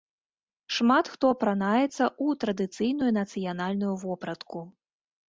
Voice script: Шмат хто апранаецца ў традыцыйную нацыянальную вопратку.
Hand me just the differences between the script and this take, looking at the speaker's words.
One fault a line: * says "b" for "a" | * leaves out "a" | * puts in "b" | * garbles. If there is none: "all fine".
all fine